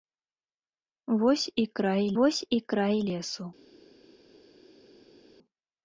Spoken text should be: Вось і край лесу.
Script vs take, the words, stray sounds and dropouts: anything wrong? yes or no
yes